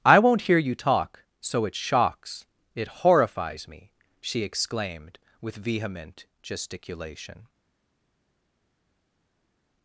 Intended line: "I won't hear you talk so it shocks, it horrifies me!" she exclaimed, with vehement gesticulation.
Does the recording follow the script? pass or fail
pass